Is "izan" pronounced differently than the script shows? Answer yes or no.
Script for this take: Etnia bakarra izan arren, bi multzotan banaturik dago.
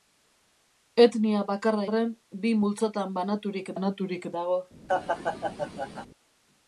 yes